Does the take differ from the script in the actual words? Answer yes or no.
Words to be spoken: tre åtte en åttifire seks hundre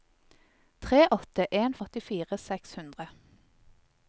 no